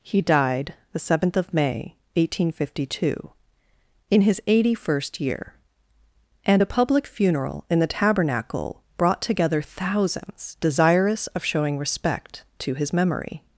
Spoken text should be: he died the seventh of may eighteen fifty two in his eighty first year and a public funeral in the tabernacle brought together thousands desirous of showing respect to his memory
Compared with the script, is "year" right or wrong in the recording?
right